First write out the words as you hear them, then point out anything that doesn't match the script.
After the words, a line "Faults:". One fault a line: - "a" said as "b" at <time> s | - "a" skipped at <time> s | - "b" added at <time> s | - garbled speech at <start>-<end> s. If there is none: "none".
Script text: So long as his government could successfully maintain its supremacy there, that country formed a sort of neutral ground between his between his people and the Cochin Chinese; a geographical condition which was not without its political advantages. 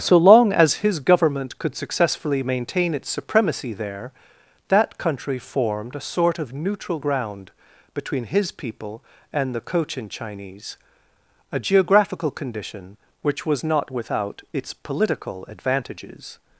So long as his government could successfully maintain its supremacy there, that country formed a sort of neutral ground between his people and the Cochin Chinese; a geographical condition which was not without its political advantages.
Faults:
- "between his" skipped at 8.5 s